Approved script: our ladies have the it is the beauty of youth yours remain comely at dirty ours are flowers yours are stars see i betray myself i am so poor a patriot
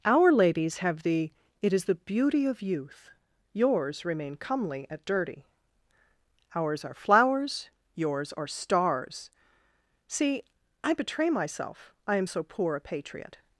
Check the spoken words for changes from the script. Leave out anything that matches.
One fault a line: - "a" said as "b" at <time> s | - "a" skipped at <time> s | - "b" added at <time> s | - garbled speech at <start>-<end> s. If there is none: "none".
none